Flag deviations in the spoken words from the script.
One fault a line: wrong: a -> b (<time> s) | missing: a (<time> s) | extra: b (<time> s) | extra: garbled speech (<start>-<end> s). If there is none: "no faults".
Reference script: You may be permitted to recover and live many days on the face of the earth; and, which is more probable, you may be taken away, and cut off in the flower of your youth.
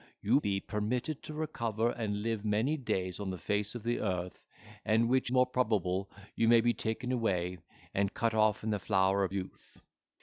missing: may (0.4 s)
missing: is (5.3 s)
missing: your (9.3 s)